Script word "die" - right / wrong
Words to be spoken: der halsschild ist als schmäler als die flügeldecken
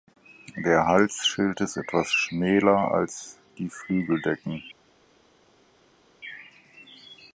right